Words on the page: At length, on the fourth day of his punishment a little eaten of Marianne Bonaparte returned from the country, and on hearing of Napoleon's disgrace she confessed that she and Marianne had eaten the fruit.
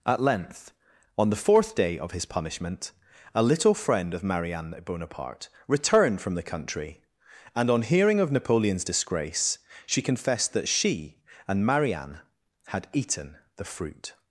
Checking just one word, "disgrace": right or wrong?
right